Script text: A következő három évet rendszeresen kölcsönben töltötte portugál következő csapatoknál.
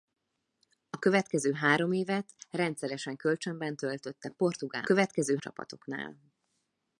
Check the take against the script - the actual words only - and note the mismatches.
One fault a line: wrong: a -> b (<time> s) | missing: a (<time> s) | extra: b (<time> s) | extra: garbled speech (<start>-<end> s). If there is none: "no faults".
no faults